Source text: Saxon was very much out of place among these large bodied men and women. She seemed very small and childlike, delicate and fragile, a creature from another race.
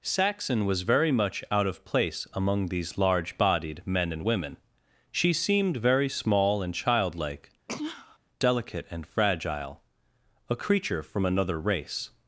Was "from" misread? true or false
false